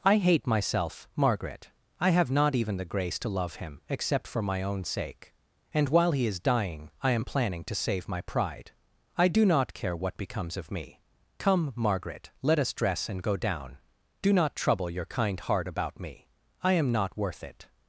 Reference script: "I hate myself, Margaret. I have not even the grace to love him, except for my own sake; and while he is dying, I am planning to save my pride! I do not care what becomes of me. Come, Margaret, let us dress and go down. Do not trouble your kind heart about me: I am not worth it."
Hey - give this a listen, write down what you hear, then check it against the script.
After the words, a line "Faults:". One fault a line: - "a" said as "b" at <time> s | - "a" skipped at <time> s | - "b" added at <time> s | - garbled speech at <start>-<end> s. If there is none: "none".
"I hate myself, Margaret. I have not even the grace to love him, except for my own sake; and while he is dying, I am planning to save my pride! I do not care what becomes of me. Come, Margaret, let us dress and go down. Do not trouble your kind heart about me: I am not worth it."
Faults:
none